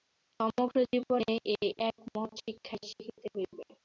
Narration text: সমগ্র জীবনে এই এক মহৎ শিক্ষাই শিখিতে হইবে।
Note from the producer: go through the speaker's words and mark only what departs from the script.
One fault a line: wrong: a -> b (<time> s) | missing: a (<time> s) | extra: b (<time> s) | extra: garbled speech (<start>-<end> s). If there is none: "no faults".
no faults